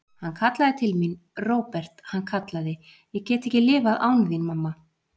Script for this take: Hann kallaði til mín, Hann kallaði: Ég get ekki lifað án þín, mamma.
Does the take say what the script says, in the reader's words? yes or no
no